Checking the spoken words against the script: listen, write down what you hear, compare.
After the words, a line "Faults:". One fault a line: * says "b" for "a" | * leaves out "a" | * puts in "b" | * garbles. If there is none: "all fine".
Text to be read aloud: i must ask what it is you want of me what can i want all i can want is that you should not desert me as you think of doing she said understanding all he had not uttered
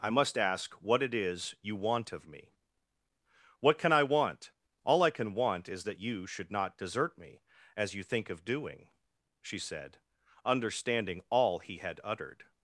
i must ask what it is you want of me what can i want all i can want is that you should not desert me as you think of doing she said understanding all he had uttered
Faults:
* leaves out "not"